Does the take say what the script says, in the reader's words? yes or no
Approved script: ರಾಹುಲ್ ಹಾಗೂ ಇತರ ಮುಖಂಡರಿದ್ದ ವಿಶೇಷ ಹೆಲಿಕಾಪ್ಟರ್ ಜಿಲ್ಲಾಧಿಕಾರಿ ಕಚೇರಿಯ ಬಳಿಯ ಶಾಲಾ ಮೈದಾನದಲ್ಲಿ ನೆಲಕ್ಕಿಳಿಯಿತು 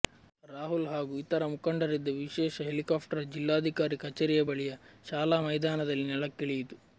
yes